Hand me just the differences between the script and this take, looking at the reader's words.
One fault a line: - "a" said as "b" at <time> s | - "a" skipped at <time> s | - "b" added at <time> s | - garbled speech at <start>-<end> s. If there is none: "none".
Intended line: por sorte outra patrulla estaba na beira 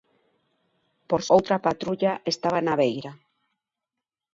- "sorte" skipped at 1.2 s